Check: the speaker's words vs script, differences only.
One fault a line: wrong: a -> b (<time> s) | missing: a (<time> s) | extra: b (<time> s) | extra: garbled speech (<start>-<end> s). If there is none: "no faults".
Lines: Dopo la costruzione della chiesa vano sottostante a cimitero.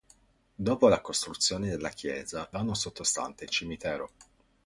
no faults